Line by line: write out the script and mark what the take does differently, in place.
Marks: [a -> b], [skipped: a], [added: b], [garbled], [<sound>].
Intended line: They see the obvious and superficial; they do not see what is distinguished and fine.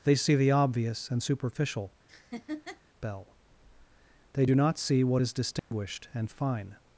They see the obvious and superficial; [laugh] [added: bell] they do not see what is distinguished [dropout] and fine.